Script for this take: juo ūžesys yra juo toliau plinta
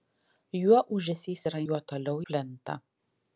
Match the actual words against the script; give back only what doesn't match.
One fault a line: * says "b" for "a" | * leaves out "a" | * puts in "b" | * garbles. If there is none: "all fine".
all fine